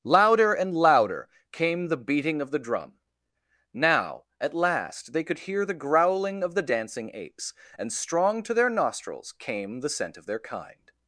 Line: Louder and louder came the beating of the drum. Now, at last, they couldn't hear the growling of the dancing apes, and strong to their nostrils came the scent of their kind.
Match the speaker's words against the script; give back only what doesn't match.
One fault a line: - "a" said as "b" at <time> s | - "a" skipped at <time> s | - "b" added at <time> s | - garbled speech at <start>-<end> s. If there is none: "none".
- "couldn't" said as "could" at 5.2 s